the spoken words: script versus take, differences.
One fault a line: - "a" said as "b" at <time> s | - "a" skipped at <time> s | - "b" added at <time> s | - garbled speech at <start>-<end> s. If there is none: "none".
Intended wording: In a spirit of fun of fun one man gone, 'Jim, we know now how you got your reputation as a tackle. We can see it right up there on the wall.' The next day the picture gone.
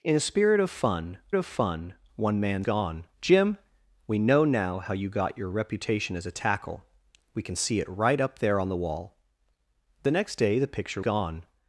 none